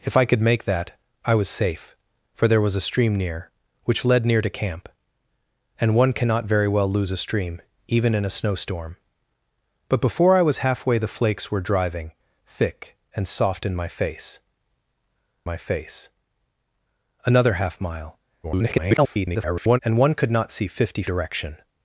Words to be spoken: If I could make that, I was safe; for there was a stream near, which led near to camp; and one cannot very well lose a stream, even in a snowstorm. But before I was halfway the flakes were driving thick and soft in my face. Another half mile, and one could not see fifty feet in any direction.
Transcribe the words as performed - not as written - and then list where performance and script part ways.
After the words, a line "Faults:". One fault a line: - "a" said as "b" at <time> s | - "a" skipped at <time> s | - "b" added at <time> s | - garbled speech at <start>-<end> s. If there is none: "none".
If I could make that, I was safe; for there was a stream near, which led near to camp; and one cannot very well lose a stream, even in a snowstorm. But before I was halfway the flakes were driving thick and soft in my face my face. Another half mile, [garbled] and one could not see fifty direction.
Faults:
- "my face" added at 15.4 s
- garbled speech at 18.4-19.8 s
- "feet in any" skipped at 21.0 s